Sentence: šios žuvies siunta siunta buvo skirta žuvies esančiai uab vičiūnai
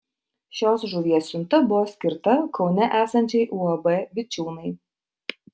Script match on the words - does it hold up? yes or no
no